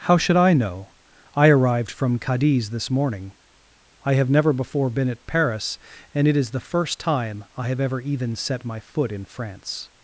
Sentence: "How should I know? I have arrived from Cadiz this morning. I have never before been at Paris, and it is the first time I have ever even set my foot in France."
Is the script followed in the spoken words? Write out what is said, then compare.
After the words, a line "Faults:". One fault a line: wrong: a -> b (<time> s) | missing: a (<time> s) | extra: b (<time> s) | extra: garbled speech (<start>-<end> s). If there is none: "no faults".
"How should I know? I arrived from Cadiz this morning. I have never before been at Paris, and it is the first time I have ever even set my foot in France."
Faults:
missing: have (1.5 s)